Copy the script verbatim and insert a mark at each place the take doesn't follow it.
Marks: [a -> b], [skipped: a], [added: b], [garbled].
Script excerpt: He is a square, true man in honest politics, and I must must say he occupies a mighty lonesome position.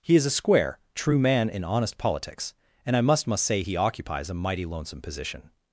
He is a square, true man in honest politics, and I must must say he occupies a mighty lonesome position.